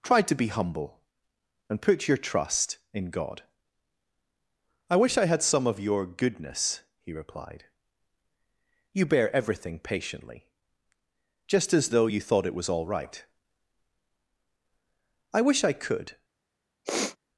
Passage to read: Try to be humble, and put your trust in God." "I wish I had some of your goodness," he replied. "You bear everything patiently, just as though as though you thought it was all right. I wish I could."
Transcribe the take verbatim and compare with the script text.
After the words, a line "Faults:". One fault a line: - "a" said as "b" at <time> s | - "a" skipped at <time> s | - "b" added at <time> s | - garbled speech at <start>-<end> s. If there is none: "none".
Try to be humble, and put your trust in God." "I wish I had some of your goodness," he replied. "You bear everything patiently, just as though you thought it was all right. I wish I could."
Faults:
- "as though" skipped at 12.1 s